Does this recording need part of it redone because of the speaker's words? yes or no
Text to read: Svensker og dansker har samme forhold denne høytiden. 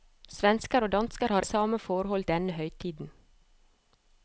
no